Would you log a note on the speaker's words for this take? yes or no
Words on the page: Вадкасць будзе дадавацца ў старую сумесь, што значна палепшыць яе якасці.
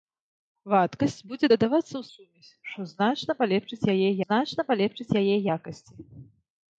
yes